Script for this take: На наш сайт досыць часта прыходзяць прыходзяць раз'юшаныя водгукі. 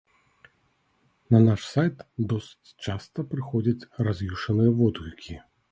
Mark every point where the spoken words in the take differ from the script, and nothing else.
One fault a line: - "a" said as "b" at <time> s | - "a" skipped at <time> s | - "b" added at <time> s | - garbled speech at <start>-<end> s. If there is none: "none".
- "прыходзяць" skipped at 3.9 s